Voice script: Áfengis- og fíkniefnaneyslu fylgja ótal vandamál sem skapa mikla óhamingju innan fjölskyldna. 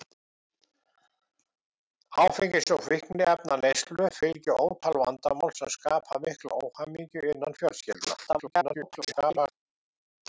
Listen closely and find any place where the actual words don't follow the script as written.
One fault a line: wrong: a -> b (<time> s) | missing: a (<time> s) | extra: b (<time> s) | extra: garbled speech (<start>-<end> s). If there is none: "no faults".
extra: garbled speech (8.3-9.5 s)